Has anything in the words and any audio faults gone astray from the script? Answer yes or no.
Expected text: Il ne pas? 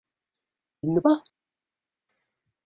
no